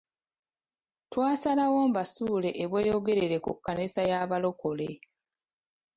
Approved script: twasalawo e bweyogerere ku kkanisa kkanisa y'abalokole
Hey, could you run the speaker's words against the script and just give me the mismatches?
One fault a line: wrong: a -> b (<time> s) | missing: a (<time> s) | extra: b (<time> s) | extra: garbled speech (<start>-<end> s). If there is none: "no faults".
extra: mbasuule (1.9 s)
missing: kkanisa (4.0 s)